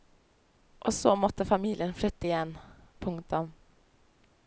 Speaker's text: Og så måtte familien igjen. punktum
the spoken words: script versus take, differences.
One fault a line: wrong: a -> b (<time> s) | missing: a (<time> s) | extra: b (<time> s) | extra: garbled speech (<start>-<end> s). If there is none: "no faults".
extra: flytte (1.9 s)